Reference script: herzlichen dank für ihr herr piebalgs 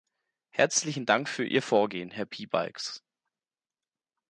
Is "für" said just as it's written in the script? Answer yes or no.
yes